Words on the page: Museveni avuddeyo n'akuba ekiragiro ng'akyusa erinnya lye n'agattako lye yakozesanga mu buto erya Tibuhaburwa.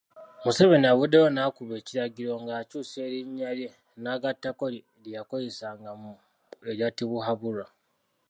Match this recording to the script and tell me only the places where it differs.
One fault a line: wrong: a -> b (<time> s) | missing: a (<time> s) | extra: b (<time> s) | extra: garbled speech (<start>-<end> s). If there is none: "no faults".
missing: buto (6.1 s)